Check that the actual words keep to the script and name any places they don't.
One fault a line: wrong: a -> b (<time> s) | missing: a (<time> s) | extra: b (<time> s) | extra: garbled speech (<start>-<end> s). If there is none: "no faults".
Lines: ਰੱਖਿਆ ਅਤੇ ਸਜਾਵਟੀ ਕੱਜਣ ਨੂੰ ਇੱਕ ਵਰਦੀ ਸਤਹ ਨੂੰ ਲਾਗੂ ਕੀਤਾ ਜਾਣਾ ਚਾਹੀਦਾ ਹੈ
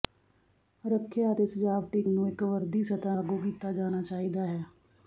missing: ਕੱਜਣ (2.0 s)
missing: ਨੂੰ (3.2 s)